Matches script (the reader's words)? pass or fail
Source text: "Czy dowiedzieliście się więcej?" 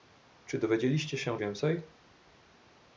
pass